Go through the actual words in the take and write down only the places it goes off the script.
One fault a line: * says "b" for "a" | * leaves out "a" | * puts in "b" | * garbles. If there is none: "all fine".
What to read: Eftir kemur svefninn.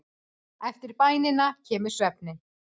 * puts in "bænina"